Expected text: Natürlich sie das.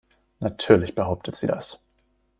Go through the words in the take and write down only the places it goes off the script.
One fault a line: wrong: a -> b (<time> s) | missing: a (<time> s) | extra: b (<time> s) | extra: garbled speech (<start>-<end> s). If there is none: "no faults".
extra: behauptet (0.9 s)